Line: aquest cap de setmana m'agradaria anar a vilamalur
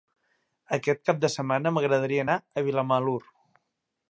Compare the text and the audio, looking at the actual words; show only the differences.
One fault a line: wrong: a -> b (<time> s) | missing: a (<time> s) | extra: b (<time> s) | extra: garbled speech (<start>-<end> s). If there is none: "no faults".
no faults